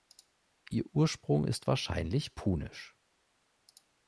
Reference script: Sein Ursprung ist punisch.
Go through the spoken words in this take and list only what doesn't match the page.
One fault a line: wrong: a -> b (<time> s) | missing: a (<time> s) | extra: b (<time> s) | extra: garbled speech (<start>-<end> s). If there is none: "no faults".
wrong: Sein -> Ihr (0.7 s)
extra: wahrscheinlich (1.7 s)